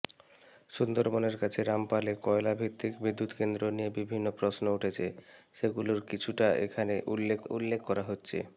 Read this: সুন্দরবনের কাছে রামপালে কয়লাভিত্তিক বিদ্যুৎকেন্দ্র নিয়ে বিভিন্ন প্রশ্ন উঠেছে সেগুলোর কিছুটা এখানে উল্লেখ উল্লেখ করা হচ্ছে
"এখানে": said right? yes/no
yes